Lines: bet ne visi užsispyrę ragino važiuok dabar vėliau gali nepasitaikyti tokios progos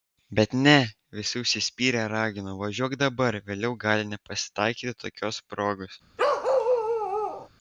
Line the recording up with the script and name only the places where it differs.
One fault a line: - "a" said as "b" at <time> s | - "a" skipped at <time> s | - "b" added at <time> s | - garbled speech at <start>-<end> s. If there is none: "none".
none